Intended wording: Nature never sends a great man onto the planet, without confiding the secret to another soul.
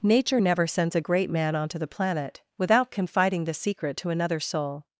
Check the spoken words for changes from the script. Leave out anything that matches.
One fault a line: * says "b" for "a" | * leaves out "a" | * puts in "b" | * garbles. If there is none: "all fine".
all fine